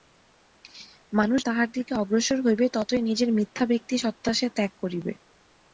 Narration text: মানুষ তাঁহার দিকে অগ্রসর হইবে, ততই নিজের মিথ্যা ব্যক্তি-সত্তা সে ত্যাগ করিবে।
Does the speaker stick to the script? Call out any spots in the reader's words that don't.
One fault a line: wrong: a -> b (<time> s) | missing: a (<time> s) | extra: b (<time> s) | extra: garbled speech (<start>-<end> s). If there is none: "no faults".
no faults